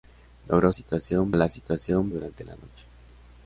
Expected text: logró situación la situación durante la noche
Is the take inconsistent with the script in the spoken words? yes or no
no